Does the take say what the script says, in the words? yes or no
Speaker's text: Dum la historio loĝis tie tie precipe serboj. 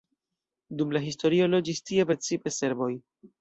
no